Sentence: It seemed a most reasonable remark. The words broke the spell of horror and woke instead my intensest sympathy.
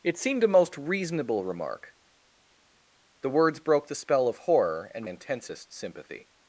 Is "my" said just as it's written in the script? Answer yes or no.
no